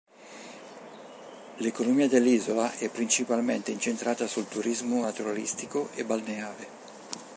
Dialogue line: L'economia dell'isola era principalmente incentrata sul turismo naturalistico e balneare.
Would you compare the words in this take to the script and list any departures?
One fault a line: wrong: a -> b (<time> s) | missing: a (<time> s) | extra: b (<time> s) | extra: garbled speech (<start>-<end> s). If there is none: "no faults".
wrong: era -> è (2.8 s)